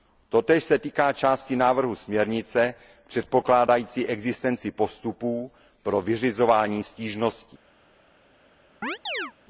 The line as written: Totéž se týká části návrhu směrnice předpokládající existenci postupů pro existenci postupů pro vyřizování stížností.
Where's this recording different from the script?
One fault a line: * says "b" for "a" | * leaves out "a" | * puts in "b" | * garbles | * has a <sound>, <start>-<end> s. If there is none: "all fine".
* leaves out "existenci postupů pro"
* has a chirp, 8.8-9.3 s